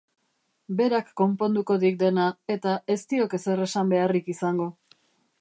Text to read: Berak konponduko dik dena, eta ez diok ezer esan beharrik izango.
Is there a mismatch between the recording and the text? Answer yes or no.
no